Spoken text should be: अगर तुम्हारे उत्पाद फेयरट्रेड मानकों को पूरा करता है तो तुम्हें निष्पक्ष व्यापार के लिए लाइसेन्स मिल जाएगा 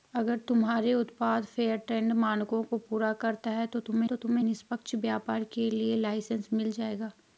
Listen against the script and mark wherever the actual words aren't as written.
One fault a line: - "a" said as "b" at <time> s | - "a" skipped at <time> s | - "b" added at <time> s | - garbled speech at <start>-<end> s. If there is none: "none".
- "तो तुम्हें" added at 4.0 s